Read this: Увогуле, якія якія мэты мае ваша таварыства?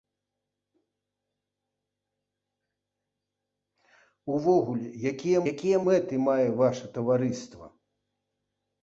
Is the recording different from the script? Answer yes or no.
no